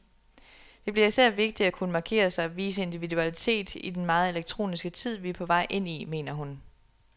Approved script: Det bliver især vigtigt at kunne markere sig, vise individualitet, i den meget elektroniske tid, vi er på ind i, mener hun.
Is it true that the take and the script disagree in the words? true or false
true